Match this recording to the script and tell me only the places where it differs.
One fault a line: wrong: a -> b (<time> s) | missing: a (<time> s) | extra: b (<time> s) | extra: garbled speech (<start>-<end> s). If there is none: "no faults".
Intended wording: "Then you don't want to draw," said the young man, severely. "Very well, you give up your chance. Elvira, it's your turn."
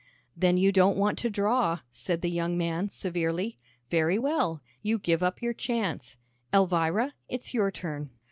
no faults